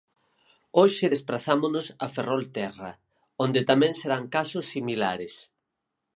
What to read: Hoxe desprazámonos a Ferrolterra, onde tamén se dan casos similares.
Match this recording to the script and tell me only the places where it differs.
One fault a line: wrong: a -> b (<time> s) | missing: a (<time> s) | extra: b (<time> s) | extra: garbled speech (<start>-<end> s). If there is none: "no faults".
no faults